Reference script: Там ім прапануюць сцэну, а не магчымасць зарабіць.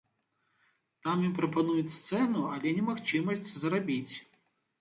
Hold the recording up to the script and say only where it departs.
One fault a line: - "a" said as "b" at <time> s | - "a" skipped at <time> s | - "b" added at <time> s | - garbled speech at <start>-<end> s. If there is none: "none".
- "а" said as "але" at 2.5 s